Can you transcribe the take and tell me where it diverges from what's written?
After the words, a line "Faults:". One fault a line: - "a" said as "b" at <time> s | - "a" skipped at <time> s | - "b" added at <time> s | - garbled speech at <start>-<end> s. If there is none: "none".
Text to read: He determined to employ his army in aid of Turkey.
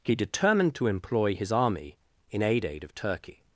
He determined to employ his army in aid aid of Turkey.
Faults:
- "aid" added at 2.6 s